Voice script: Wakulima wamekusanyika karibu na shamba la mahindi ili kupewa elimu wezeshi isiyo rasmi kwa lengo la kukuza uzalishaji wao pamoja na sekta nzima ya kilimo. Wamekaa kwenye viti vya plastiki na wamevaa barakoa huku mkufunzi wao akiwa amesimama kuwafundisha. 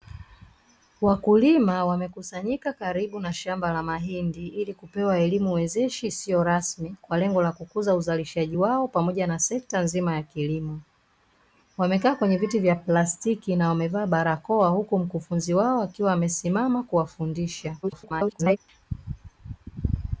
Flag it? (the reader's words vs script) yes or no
yes